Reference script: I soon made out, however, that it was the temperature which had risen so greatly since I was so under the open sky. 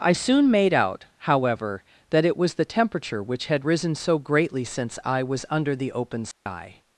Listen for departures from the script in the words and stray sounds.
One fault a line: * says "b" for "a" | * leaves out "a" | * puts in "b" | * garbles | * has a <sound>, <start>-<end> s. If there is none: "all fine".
* leaves out "so"
* has a dropout, 6.3-6.5 s